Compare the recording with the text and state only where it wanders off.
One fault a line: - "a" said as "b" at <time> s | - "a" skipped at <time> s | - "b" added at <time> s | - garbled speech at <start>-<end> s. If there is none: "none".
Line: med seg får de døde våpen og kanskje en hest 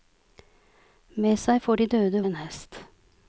- "våpen og kanskje" skipped at 2.2 s